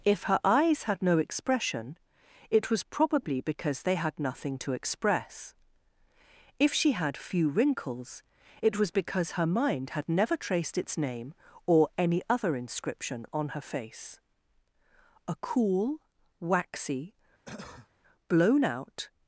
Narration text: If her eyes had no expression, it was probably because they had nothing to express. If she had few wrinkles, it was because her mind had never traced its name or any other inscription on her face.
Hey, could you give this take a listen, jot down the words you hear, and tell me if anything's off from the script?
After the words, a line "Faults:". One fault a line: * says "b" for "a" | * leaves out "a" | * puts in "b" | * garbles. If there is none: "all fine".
If her eyes had no expression, it was probably because they had nothing to express. If she had few wrinkles, it was because her mind had never traced its name or any other inscription on her face. A cool, waxy, blown out
Faults:
* puts in "A cool waxy blown out"